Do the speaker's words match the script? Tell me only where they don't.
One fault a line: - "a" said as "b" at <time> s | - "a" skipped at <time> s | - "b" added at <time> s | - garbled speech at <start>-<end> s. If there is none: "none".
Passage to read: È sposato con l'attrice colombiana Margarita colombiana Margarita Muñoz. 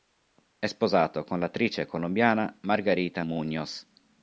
- "colombiana Margarita" skipped at 3.2 s